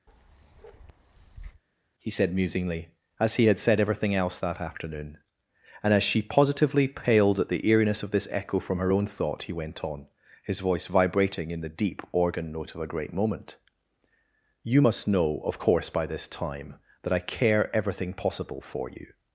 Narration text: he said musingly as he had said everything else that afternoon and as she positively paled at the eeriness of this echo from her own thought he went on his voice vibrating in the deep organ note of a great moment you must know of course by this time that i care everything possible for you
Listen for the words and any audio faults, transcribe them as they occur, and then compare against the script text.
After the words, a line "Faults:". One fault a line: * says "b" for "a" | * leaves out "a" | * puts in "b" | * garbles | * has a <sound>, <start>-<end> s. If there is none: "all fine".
he said musingly as he had said everything else that afternoon and as she positively paled at the eeriness of this echo from her own thought he went on his voice vibrating in the deep organ note of a great moment you must know of course by this time that i care everything possible for you
Faults:
* has a bark, 0.1-1.6 s